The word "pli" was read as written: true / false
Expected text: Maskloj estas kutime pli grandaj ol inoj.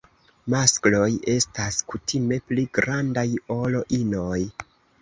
true